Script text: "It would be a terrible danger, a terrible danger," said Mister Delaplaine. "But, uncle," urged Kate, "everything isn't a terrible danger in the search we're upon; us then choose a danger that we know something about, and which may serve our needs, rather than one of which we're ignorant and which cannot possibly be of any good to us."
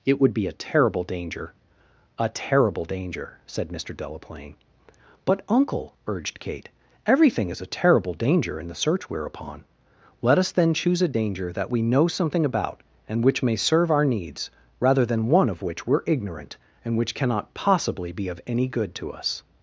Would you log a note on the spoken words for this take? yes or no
yes